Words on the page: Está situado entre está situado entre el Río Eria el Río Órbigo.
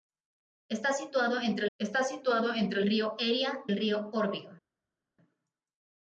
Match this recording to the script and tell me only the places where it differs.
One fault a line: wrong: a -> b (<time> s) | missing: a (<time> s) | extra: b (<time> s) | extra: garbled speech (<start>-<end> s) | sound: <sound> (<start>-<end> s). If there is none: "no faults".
no faults